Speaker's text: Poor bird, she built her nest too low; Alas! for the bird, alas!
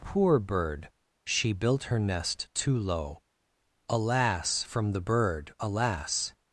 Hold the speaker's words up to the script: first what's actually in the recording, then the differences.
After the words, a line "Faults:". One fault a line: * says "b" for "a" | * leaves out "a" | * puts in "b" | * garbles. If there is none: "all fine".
Poor bird, she built her nest too low; Alas! from the bird, alas!
Faults:
* says "from" for "for"